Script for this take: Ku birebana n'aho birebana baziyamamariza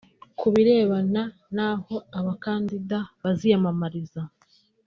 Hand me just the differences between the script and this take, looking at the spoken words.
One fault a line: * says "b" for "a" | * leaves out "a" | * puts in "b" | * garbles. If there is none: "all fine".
* says "abakandida" for "birebana"